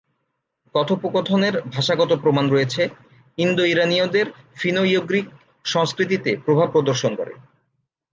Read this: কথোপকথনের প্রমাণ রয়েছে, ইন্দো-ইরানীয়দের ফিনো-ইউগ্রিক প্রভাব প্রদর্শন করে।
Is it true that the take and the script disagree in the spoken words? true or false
true